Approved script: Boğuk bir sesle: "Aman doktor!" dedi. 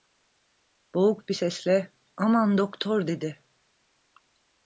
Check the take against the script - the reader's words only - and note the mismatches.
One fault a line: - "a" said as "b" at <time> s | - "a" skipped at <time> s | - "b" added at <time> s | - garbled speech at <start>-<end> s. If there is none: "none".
none